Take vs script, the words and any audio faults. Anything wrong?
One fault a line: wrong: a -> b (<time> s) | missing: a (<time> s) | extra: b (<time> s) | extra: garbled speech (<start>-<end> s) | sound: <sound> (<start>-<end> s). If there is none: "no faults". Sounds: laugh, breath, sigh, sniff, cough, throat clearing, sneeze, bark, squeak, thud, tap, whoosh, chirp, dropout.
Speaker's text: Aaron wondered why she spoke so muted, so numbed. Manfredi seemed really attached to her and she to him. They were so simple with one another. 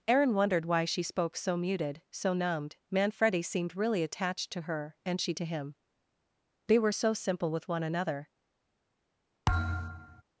sound: thud (9.5-10.2 s)